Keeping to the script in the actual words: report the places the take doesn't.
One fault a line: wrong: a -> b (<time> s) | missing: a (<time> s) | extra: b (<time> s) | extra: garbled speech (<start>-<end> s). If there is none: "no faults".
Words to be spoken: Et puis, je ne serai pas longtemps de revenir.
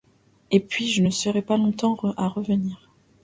wrong: de -> à (2.2 s)